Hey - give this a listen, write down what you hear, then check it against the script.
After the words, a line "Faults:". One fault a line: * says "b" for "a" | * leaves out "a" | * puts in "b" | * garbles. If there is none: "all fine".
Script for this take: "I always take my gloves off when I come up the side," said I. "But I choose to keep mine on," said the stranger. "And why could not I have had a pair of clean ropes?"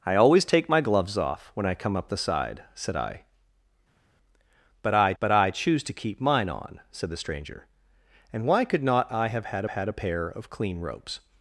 "I always take my gloves off when I come up the side," said I. "But I but I choose to keep mine on," said the stranger. "And why could not I have had had a pair of clean ropes?"
Faults:
* puts in "but I"
* puts in "had"